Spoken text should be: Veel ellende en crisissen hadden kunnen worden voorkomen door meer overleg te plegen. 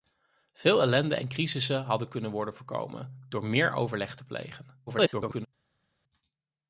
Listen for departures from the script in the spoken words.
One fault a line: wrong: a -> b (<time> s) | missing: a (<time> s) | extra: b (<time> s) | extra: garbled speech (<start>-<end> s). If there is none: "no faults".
extra: garbled speech (4.9-5.5 s)